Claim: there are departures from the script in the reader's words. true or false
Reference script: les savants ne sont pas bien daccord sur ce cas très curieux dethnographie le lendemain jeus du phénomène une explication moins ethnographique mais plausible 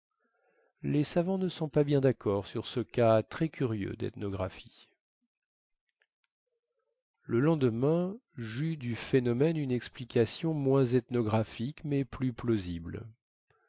true